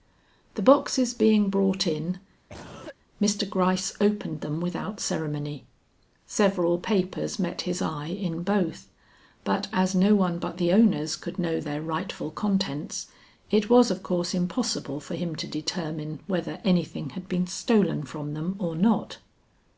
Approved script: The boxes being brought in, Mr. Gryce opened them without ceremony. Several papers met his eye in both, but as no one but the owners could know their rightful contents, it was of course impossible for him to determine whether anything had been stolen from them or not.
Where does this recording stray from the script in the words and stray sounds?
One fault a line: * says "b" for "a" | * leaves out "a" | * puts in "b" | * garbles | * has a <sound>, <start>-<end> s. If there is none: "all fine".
* has a cough, 2.5-3.0 s